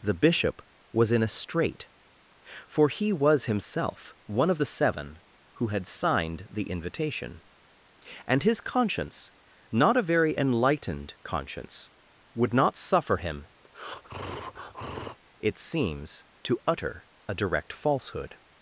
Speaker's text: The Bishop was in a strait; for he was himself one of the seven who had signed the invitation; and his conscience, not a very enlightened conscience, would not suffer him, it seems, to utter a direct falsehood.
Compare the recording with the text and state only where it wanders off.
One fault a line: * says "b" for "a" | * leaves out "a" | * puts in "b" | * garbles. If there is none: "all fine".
all fine